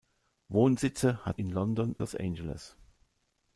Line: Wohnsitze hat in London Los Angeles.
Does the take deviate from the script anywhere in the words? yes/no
no